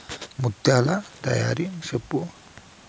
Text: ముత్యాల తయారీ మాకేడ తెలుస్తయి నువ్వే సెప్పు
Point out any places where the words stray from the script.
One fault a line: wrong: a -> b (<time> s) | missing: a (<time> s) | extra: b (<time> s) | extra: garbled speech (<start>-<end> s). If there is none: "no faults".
missing: మాకేడ తెలుస్తయి నువ్వే (1.6 s)